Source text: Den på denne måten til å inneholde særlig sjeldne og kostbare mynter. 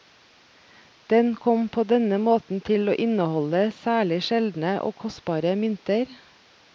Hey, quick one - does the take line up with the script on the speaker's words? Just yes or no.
no